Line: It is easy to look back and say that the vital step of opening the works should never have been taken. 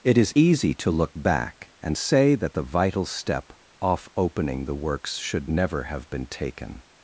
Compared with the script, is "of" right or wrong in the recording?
wrong